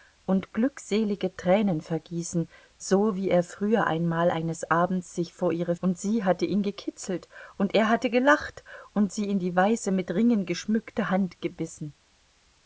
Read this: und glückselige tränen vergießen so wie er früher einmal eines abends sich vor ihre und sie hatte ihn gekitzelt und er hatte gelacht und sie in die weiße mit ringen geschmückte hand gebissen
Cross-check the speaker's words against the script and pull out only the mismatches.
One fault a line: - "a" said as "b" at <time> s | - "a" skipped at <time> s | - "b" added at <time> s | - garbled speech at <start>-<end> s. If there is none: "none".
none